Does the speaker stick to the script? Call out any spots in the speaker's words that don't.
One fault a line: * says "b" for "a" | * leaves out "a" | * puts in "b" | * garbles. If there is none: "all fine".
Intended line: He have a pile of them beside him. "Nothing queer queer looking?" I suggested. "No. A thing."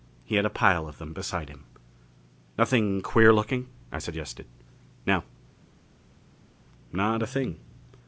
* says "had" for "have"
* leaves out "queer"
* puts in "Not"